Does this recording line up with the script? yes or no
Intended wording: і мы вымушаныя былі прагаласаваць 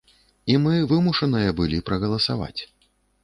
yes